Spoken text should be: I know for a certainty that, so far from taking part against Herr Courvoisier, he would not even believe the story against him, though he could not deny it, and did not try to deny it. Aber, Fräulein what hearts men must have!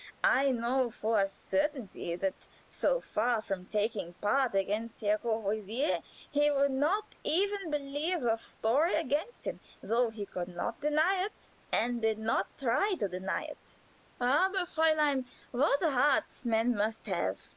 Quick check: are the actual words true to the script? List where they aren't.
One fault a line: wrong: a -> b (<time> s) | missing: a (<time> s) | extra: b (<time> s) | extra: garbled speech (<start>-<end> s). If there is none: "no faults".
no faults